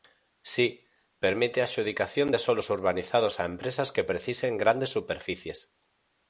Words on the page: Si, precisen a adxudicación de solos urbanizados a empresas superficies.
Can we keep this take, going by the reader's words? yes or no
no